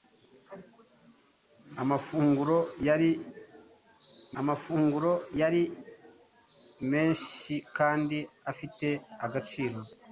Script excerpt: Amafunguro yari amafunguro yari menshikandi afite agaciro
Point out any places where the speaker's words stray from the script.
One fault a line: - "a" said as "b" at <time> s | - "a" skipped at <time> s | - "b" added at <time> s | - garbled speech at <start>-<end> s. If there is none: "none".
none